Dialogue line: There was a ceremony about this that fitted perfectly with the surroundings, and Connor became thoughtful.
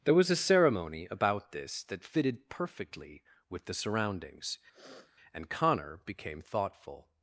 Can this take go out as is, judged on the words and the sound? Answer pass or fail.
fail